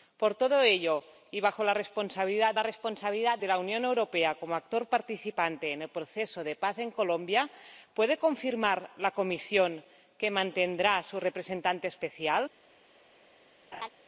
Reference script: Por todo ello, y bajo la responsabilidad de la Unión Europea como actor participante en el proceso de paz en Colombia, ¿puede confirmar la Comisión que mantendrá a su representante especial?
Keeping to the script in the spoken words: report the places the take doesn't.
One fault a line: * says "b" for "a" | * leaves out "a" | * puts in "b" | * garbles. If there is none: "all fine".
* puts in "la responsabilidad"